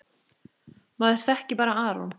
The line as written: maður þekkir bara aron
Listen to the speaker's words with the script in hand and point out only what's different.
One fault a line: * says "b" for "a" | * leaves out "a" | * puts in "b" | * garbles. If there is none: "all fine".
all fine